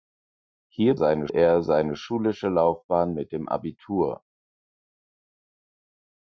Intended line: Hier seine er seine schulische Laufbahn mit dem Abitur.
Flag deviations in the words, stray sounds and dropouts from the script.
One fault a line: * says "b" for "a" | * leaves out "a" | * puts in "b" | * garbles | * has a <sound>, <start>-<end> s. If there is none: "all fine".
all fine